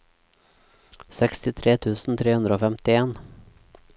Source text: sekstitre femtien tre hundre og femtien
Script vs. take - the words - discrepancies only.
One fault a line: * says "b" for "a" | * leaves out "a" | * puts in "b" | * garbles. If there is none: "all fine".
* says "tusen" for "femtien"